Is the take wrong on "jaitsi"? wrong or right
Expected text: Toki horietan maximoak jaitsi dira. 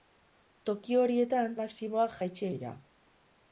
right